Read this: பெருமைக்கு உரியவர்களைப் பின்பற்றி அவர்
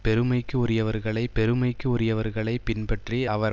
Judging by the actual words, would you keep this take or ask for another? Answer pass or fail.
fail